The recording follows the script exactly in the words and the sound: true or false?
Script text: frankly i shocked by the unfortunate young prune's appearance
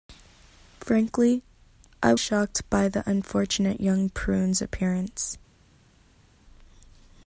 true